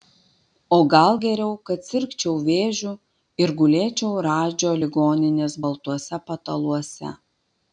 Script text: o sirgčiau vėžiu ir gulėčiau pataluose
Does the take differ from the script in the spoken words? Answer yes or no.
yes